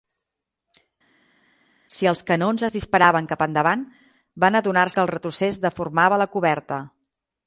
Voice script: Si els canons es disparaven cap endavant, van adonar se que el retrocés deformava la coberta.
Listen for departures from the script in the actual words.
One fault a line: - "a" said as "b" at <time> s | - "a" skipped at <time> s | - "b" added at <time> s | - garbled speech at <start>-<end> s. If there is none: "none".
- "se" skipped at 4.9 s